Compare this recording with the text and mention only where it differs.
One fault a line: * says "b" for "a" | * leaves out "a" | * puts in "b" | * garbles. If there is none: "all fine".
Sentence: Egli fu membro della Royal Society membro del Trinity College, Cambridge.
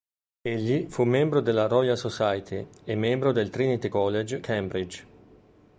* puts in "e"